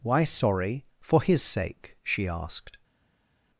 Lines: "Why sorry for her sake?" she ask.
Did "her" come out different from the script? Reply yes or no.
yes